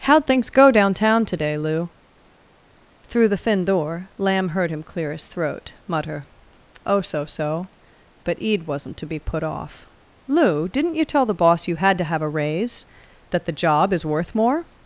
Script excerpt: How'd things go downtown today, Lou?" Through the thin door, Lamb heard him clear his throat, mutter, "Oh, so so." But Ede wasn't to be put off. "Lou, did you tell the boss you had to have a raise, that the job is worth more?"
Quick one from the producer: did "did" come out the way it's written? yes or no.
no